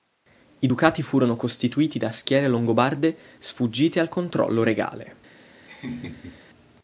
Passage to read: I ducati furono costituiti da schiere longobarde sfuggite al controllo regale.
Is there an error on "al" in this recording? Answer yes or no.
no